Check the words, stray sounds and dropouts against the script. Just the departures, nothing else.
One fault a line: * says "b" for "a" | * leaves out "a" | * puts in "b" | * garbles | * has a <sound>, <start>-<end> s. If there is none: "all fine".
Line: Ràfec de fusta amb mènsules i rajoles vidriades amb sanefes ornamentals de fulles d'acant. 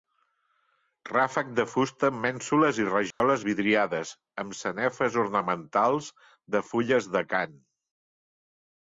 * has a dropout, 3.1-3.2 s